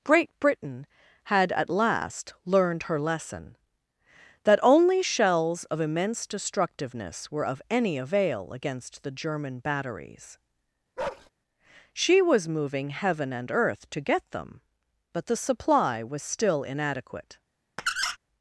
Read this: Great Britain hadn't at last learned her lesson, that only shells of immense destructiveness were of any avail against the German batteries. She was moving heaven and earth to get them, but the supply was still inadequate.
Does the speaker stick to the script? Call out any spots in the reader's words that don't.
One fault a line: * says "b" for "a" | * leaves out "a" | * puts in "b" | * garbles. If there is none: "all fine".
* says "had" for "hadn't"